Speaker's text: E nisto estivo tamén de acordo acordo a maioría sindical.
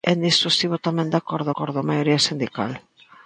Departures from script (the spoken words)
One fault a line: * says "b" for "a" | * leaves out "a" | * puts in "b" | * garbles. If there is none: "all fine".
all fine